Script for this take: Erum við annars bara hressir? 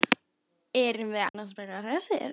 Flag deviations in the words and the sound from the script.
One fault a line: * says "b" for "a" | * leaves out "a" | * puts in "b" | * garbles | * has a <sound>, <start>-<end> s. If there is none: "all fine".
* has a dropout, 1.3-1.3 s